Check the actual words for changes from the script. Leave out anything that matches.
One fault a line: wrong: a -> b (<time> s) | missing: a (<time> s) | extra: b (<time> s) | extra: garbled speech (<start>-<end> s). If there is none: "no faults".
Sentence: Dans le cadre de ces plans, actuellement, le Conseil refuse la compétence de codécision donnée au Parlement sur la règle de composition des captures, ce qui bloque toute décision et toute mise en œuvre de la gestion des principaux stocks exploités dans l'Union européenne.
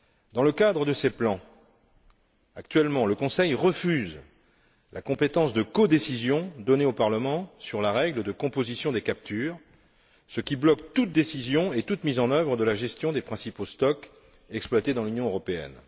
no faults